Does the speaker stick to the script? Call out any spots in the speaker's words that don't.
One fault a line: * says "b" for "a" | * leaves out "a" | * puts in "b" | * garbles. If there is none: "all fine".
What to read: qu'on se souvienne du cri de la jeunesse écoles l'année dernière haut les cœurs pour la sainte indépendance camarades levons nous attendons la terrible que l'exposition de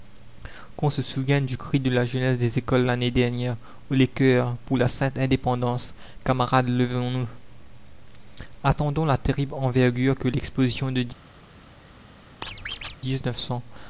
* puts in "des"
* puts in "envergure"